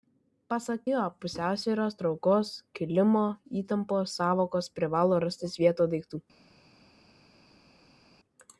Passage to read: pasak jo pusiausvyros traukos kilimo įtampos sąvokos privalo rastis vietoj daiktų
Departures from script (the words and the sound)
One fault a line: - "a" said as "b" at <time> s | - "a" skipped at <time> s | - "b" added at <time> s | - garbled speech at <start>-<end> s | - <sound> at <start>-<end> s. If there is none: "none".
none